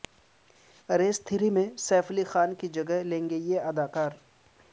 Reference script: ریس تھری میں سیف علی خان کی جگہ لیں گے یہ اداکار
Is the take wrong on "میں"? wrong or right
right